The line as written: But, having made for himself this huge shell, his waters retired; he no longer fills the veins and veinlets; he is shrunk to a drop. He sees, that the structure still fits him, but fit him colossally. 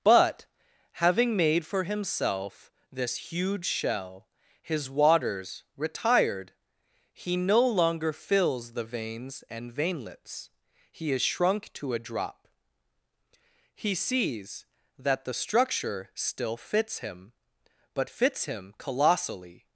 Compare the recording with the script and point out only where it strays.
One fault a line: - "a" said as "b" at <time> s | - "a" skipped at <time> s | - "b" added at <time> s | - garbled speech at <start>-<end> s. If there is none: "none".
- "fit" said as "fits" at 18.1 s